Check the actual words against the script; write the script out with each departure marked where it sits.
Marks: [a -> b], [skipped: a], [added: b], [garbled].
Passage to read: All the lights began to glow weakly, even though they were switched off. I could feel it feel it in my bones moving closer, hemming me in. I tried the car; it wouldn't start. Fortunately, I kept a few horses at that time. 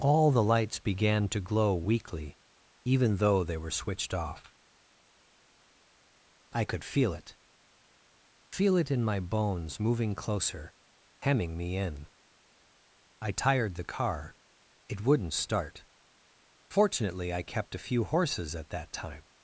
All the lights began to glow weakly, even though they were switched off. I could feel it feel it in my bones moving closer, hemming me in. I [tried -> tired] the car; it wouldn't start. Fortunately, I kept a few horses at that time.